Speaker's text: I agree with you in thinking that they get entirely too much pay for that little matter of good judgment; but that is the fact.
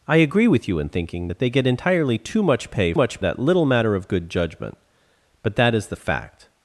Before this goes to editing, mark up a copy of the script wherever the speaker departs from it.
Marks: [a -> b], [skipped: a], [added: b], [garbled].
I agree with you in thinking that they get entirely too much pay [for -> much] that little matter of good judgment; but that is the fact.